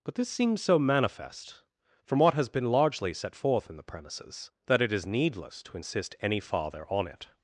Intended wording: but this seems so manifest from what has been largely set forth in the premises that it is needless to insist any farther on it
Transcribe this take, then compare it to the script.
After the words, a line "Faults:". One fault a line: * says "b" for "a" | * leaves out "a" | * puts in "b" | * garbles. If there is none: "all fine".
but this seems so manifest from what has been largely set forth in the premises that it is needless to insist any farther on it
Faults:
all fine